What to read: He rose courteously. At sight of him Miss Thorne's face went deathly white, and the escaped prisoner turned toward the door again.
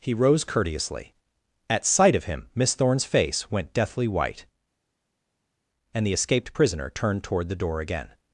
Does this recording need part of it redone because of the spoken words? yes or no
no